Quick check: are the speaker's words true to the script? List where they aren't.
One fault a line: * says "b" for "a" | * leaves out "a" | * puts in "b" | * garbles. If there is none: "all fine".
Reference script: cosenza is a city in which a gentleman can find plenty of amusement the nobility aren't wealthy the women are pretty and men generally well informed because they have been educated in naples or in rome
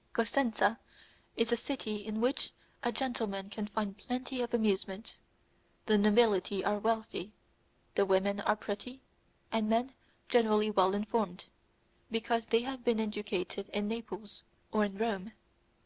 * says "are" for "aren't"